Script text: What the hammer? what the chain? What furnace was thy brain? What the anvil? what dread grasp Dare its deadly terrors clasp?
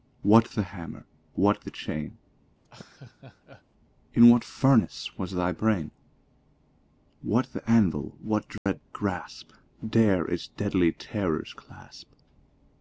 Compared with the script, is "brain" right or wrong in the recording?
right